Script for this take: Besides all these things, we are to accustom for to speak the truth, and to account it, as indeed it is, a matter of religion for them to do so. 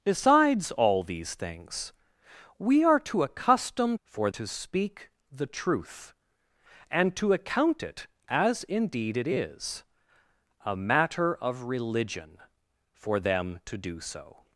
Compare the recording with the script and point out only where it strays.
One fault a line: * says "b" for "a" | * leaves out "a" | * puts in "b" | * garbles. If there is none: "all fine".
all fine